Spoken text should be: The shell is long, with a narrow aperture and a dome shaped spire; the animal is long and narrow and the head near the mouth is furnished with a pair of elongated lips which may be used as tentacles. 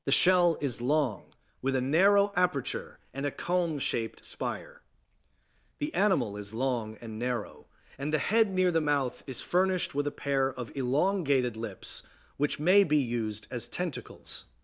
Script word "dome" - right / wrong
wrong